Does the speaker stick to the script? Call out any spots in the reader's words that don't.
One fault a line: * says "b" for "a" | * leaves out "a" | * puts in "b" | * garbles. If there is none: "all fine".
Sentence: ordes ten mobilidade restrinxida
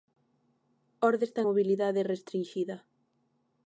all fine